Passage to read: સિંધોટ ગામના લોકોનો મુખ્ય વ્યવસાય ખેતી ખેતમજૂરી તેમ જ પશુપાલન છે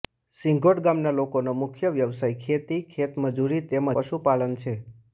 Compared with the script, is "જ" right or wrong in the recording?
wrong